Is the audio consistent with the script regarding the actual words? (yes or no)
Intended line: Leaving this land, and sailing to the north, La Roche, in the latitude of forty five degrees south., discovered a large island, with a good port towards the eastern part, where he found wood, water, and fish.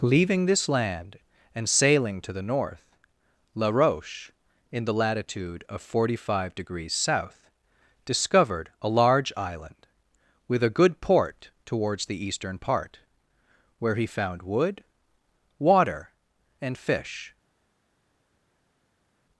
yes